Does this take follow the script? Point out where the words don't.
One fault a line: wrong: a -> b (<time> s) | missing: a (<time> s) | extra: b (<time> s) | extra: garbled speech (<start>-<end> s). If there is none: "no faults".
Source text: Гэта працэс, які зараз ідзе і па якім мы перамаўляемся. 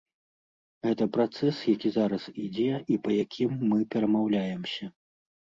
no faults